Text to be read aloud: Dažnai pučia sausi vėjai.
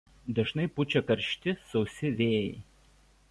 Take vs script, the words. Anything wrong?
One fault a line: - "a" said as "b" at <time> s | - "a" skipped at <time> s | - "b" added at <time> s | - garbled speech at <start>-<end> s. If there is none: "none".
- "karšti" added at 1.1 s